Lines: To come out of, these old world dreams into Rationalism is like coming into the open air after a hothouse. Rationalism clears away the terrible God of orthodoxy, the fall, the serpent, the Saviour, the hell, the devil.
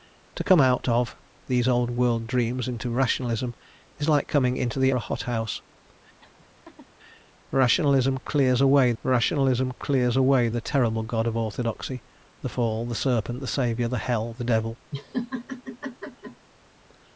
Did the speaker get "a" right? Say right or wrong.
wrong